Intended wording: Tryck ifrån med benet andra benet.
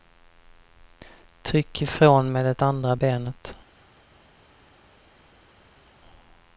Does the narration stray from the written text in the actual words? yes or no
yes